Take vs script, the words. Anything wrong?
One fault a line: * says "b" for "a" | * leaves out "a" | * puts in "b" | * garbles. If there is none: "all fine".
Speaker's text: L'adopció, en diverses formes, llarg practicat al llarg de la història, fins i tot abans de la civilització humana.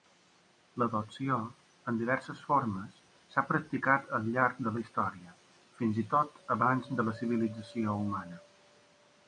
* says "s'ha" for "llarg"